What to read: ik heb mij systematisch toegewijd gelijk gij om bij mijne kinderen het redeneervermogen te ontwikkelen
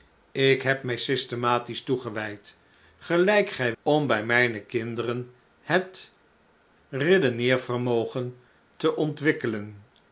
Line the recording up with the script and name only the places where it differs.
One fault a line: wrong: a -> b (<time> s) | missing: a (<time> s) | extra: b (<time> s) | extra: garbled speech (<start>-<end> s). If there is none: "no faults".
no faults